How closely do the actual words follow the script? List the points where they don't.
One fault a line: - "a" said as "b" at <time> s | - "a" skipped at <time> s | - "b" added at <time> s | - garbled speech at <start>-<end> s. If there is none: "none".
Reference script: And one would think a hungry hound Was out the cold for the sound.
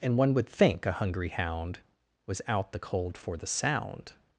none